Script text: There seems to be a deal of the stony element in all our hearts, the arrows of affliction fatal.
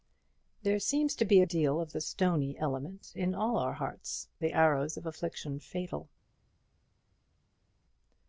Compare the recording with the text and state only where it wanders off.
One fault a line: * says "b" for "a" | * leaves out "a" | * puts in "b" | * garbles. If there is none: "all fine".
all fine